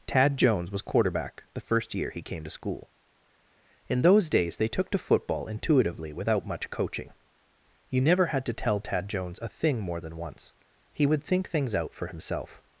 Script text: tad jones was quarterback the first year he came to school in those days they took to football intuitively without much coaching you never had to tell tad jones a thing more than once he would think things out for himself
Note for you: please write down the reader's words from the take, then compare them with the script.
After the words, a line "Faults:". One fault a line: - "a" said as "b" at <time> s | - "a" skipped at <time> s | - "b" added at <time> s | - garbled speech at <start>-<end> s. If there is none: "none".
tad jones was quarterback the first year he came to school in those days they took to football intuitively without much coaching you never had to tell tad jones a thing more than once he would think things out for himself
Faults:
none